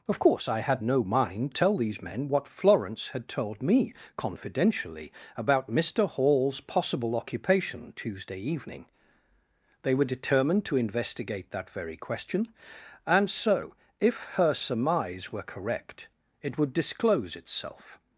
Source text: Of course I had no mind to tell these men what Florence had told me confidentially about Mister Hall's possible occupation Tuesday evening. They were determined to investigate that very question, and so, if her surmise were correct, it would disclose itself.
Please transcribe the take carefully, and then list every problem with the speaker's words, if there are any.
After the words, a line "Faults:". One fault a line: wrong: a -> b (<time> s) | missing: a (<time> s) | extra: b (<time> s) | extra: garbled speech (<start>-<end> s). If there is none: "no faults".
Of course I had no mind tell these men what Florence had told me confidentially about Mister Hall's possible occupation Tuesday evening. They were determined to investigate that very question, and so, if her surmise were correct, it would disclose itself.
Faults:
missing: to (1.5 s)